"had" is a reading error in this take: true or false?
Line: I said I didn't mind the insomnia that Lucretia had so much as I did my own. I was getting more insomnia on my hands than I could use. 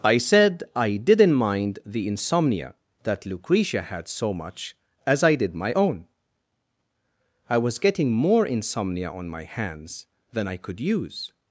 false